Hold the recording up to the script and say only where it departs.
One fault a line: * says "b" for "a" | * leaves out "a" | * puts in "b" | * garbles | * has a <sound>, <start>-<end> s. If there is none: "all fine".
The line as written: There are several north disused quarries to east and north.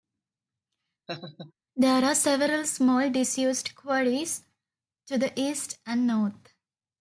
* has a laugh, 1.1-1.5 s
* says "small" for "north"
* puts in "the"